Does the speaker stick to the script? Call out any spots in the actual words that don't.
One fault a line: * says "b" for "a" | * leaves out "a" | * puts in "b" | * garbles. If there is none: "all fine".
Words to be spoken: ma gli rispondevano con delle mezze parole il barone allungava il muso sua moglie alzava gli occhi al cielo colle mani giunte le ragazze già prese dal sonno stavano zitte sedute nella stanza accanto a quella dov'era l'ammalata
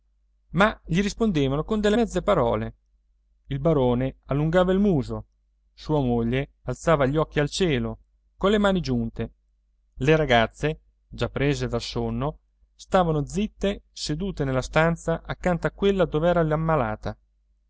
all fine